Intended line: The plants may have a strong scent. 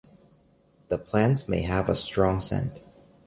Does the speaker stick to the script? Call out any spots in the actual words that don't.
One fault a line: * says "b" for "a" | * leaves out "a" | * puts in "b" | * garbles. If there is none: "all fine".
all fine